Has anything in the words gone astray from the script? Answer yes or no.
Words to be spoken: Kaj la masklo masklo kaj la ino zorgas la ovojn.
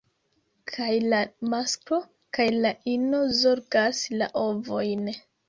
yes